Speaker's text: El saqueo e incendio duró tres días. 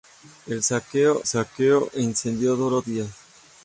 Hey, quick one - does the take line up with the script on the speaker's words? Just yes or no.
no